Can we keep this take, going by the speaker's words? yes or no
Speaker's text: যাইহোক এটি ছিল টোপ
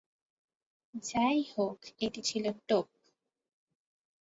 yes